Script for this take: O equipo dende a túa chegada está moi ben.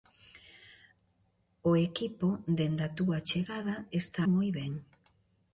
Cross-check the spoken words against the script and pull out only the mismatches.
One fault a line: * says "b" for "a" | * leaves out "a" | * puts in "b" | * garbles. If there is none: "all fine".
all fine